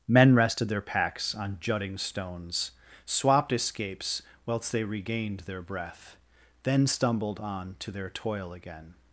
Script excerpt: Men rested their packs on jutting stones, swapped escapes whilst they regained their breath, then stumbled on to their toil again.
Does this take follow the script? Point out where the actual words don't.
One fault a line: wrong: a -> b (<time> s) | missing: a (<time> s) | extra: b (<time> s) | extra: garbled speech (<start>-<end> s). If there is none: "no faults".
no faults